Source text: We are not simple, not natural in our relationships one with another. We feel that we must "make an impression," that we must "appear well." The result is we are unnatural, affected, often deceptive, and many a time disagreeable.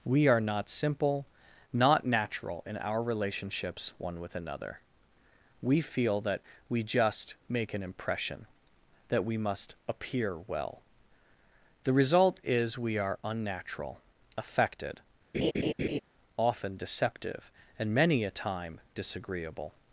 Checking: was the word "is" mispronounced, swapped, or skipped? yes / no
no